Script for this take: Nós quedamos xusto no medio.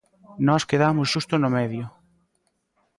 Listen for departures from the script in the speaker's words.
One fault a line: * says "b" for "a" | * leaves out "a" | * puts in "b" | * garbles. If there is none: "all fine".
all fine